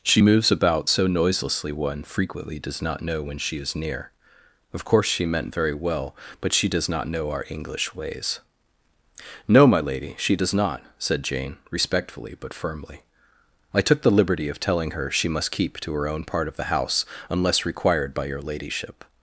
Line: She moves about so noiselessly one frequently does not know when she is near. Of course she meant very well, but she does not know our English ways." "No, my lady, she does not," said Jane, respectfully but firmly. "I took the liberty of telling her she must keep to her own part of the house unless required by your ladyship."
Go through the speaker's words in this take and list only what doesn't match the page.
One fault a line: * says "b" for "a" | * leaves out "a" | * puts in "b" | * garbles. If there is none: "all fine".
all fine